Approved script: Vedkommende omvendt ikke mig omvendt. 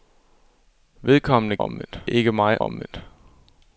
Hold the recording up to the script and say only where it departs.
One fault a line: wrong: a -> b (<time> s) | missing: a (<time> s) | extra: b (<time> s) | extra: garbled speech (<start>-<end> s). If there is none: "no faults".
no faults